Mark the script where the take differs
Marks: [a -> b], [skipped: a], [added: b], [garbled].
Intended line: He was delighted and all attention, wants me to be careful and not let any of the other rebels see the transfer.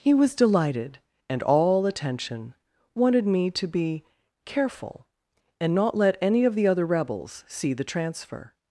He was delighted and all attention, [wants -> wanted] me to be careful and not let any of the other rebels see the transfer.